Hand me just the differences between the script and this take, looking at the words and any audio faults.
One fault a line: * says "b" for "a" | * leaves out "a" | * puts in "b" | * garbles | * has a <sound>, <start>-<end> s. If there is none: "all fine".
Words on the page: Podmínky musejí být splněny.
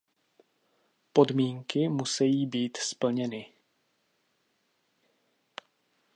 all fine